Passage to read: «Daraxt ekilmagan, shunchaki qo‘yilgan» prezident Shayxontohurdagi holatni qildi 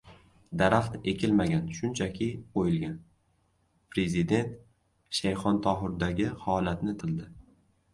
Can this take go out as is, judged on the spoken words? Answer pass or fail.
pass